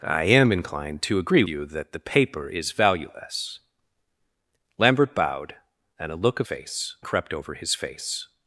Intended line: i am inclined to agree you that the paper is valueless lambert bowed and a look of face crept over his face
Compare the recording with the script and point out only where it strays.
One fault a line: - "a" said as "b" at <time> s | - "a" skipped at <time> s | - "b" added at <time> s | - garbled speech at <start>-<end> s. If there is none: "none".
none